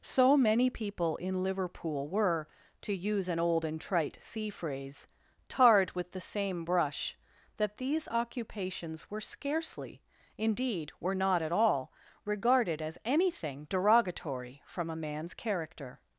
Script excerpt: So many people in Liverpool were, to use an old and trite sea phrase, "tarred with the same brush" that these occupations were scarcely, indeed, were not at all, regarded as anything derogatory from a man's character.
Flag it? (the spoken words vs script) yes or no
no